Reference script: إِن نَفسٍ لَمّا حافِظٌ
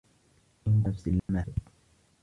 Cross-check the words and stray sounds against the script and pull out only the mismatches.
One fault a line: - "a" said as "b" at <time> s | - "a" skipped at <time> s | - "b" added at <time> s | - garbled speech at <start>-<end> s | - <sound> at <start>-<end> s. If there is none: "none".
- dropout at 1.2-1.3 s